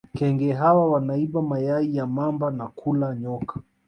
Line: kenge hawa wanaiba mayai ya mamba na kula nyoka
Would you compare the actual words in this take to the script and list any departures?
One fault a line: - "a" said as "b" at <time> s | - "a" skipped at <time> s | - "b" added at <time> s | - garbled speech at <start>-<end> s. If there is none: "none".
none